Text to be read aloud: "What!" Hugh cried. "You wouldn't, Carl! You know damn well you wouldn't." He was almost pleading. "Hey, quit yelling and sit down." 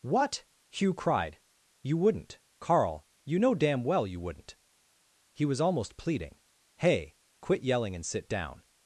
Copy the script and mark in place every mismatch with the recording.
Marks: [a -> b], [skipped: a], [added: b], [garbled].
"What!" Hugh cried. "You wouldn't, Carl! You know damn well you wouldn't." He was almost pleading. "Hey, quit yelling and sit down."